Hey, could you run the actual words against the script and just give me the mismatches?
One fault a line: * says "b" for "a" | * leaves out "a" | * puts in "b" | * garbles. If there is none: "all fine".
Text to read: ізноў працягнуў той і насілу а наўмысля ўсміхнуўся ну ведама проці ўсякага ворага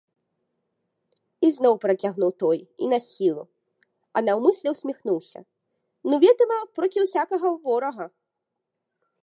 all fine